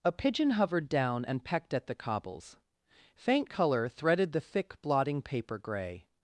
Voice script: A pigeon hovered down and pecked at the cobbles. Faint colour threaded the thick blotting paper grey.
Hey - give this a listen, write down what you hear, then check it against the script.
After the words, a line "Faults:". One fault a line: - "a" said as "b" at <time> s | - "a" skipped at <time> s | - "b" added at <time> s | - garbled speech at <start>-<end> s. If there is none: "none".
A pigeon hovered down and pecked at the cobbles. Faint colour threaded the thick blotting paper grey.
Faults:
none